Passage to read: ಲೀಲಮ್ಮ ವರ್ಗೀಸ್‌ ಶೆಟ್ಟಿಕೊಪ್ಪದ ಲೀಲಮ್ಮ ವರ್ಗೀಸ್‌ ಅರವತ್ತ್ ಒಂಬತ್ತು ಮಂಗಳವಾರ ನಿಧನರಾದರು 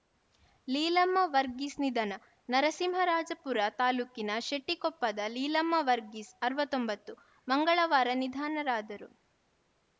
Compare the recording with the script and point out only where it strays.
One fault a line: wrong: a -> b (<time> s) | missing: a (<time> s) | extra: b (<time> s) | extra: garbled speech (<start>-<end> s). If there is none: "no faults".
extra: ನಿಧನ ನರಸಿಂಹರಾಜಪುರ ತಾಲೂಕಿನ (1.8 s)